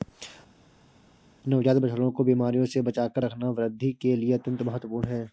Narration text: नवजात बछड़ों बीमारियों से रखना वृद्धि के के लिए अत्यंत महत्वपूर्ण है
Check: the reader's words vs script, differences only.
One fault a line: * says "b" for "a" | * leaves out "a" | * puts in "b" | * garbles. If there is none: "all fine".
* puts in "को"
* puts in "बचाकर"
* leaves out "के"